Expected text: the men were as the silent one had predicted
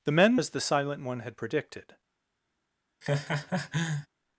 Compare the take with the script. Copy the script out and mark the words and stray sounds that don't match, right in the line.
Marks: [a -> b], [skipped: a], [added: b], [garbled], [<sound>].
the men [skipped: were] as the silent one had predicted [laugh]